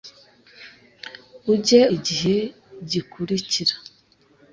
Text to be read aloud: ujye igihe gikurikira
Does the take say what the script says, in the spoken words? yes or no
yes